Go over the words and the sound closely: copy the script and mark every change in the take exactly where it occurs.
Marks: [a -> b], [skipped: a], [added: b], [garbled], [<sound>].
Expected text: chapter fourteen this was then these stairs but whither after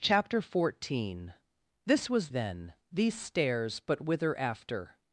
chapter fourteen this was then these stairs but whither after